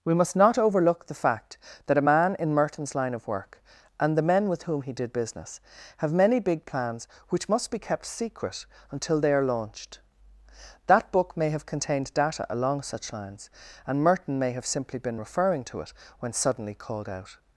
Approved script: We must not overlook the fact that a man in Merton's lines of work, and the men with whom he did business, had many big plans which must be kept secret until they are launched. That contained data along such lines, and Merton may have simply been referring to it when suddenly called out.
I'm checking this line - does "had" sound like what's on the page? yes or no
no